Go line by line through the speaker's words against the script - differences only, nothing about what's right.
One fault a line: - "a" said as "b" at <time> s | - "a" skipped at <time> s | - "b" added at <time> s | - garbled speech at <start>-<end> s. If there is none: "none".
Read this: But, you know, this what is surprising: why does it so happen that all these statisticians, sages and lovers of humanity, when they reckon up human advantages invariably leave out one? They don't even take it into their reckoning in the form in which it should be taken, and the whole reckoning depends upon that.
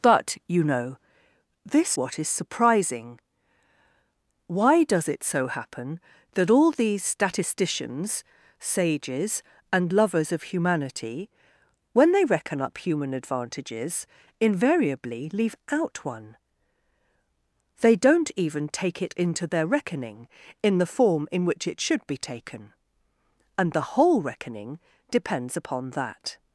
none